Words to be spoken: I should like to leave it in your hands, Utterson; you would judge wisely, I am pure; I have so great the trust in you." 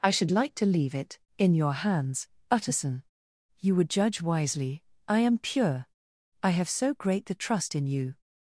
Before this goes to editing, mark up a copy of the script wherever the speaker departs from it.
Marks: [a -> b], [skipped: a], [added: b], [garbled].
I should like to leave it in your hands, Utterson; you would judge wisely, I am pure; I have so great the trust in you."